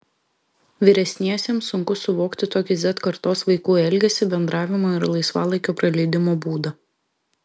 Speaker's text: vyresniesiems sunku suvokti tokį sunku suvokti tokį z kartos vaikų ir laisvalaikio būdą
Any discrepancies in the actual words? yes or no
yes